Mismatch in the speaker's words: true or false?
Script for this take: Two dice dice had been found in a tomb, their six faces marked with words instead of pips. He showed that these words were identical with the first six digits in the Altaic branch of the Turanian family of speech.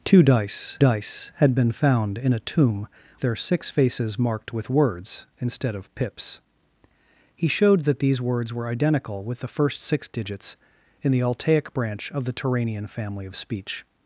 false